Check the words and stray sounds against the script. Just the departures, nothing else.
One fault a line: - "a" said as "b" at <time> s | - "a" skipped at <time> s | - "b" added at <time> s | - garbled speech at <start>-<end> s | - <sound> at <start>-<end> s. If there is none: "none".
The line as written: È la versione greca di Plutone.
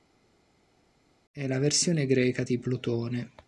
none